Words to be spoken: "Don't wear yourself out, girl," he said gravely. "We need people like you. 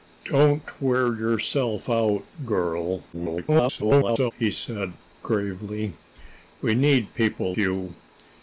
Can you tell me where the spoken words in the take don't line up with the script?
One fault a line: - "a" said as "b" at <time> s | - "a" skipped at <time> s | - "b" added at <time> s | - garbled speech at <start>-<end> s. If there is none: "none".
- garbled speech at 3.1-4.3 s
- "like" skipped at 7.5 s